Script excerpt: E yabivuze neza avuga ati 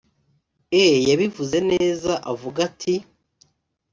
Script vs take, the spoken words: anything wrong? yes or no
no